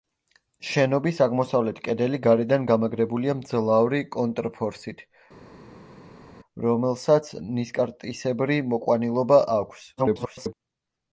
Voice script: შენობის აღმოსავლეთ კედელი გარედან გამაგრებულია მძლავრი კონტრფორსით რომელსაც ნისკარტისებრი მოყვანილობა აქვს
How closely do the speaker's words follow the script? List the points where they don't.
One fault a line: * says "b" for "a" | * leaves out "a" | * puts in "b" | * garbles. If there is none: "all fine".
* garbles